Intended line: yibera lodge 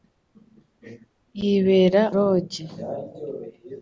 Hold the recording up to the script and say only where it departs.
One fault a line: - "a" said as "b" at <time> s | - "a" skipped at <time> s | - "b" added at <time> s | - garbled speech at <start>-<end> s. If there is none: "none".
none